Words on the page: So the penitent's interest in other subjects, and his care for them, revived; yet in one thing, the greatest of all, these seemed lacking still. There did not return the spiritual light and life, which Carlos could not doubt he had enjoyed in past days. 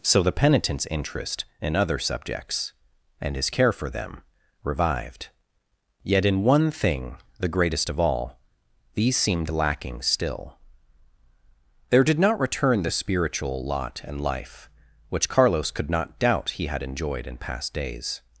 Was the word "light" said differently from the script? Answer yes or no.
yes